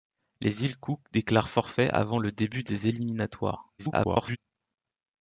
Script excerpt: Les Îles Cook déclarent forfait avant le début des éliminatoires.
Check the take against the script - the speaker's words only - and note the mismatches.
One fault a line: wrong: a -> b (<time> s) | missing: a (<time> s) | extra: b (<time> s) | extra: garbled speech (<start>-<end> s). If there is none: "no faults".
extra: garbled speech (3.8-4.4 s)